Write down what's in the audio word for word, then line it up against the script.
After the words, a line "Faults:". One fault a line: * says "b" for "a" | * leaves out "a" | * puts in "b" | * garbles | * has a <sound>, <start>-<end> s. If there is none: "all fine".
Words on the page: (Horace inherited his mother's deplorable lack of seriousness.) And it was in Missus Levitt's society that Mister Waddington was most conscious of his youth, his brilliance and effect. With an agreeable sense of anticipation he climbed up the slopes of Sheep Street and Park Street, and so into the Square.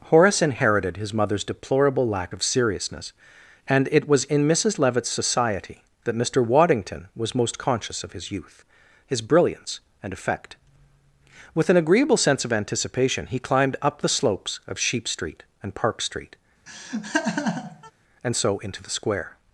(Horace inherited his mother's deplorable lack of seriousness.) And it was in Missus Levitt's society that Mister Waddington was most conscious of his youth, his brilliance and effect. With an agreeable sense of anticipation he climbed up the slopes of Sheep Street and Park Street, and so into the Square.
Faults:
* has a laugh, 16.7-17.9 s